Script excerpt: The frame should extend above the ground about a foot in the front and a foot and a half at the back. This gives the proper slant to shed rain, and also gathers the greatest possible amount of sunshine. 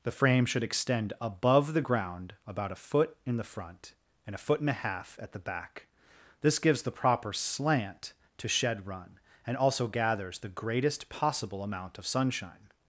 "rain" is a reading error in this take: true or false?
true